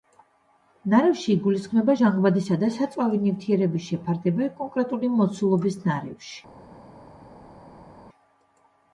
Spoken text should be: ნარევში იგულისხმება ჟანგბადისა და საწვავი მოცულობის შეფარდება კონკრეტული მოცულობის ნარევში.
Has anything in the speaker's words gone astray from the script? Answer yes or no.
yes